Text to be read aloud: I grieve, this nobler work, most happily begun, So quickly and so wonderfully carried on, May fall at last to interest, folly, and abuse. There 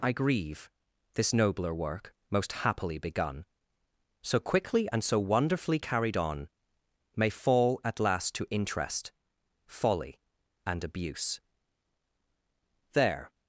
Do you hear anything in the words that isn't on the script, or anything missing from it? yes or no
no